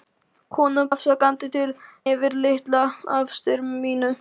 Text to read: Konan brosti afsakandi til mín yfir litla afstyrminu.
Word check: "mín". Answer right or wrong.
wrong